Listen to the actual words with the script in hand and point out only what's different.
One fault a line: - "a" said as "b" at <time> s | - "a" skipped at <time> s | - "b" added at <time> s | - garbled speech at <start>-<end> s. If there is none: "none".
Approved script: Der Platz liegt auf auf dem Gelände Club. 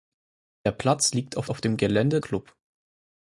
none